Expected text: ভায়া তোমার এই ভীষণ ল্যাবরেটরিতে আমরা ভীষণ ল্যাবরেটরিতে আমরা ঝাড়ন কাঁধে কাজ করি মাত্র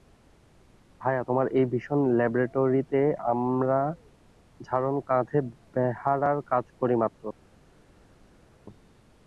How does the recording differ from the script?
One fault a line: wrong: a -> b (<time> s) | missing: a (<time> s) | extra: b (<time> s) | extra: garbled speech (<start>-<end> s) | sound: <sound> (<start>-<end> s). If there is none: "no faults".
missing: ভীষণ ল্যাবরেটরিতে আমরা (3.8 s)
extra: বেহারার (5.7 s)